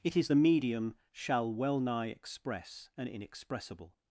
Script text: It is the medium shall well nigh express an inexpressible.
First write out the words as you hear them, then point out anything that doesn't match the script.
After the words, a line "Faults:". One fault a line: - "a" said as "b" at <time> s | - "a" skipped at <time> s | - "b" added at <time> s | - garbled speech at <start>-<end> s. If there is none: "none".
It is the medium shall well nigh express an inexpressible.
Faults:
none